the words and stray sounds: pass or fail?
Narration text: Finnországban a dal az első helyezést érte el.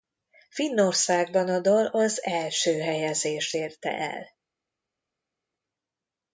pass